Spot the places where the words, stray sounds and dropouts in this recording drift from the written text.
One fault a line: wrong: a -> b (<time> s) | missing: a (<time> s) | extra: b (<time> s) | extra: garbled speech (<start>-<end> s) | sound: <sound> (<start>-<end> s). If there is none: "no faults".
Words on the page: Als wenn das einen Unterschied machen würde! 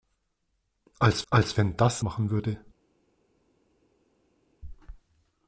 extra: als (1.3 s)
missing: einen Unterschied (2.1 s)